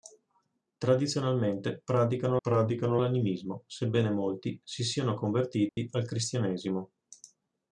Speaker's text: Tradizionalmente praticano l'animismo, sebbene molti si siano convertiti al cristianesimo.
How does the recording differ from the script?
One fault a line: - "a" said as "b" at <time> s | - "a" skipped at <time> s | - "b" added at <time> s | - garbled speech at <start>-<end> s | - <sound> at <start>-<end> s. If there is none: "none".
- "praticano" added at 2.4 s
- dropout at 5.7-5.8 s